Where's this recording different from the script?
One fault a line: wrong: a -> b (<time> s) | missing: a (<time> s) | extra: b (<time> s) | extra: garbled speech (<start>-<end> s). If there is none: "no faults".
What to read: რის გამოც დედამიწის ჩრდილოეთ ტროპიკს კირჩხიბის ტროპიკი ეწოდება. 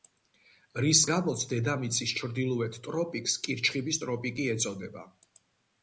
no faults